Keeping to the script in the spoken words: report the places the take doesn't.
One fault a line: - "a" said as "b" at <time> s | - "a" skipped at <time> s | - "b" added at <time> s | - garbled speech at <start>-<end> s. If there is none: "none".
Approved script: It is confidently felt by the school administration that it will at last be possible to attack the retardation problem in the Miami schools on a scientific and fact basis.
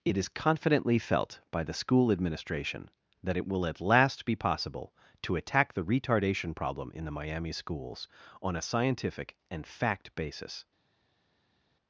none